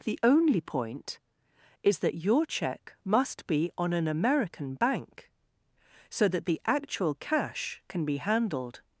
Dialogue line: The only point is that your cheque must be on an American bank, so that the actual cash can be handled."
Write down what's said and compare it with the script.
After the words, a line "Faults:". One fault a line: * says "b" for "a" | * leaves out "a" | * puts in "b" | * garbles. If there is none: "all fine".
The only point is that your cheque must be on an American bank, so that the actual cash can be handled."
Faults:
all fine